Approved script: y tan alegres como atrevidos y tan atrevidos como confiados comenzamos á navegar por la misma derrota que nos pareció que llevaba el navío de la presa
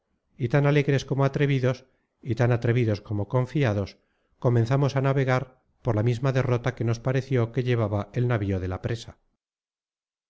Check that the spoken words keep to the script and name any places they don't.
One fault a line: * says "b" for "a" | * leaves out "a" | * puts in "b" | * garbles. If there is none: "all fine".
all fine